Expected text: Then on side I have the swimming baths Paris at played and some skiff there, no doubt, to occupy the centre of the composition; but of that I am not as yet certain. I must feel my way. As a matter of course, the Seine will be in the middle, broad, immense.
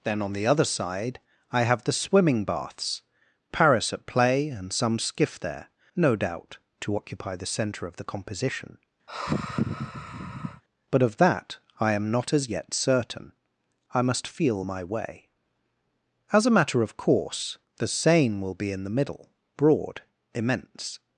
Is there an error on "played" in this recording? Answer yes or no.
yes